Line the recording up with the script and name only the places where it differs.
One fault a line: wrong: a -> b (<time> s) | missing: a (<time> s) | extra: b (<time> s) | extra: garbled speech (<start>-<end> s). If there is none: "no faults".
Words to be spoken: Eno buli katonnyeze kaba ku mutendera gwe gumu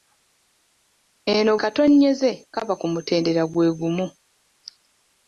missing: buli (1.5 s)